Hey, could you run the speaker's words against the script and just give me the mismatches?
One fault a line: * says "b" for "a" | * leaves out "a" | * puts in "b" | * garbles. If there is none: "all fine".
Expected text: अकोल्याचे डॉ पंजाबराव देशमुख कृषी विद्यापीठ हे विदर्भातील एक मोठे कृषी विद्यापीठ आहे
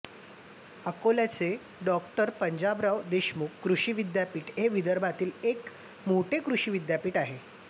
all fine